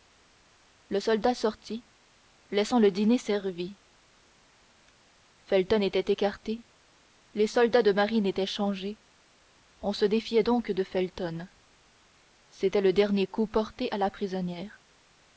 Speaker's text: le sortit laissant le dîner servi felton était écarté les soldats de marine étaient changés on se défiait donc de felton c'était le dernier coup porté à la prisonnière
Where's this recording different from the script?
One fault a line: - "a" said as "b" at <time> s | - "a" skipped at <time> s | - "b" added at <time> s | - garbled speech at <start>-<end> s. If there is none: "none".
- "soldat" added at 1.0 s